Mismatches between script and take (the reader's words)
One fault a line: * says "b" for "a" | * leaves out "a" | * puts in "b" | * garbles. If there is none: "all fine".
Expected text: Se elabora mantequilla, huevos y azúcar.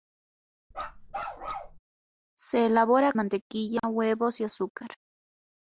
all fine